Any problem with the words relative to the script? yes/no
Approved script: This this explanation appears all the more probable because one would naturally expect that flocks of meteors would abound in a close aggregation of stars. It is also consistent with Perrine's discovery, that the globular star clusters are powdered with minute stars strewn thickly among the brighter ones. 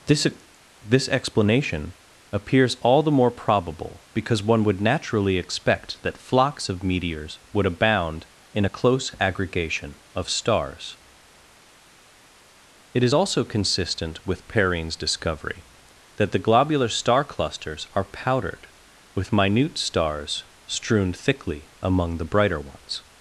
no